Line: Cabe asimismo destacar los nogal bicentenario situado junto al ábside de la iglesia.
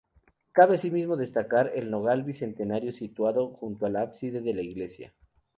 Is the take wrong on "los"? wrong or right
wrong